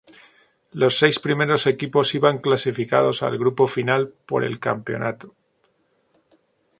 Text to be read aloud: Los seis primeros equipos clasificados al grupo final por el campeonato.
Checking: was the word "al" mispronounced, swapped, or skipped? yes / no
no